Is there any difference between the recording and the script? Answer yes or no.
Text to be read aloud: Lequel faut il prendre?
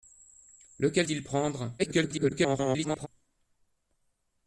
yes